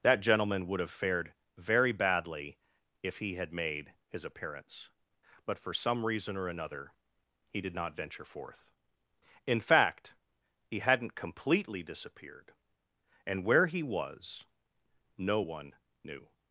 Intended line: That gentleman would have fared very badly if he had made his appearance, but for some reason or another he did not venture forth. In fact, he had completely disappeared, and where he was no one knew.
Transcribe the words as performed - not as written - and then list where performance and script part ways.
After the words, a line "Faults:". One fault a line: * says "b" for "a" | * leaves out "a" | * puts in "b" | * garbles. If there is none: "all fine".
That gentleman would have fared very badly if he had made his appearance, but for some reason or another he did not venture forth. In fact, he hadn't completely disappeared, and where he was no one knew.
Faults:
* says "hadn't" for "had"